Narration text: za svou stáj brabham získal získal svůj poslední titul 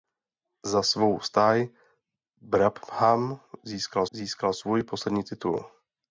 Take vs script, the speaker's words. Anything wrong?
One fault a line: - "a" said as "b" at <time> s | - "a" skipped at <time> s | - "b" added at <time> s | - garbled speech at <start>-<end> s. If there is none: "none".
none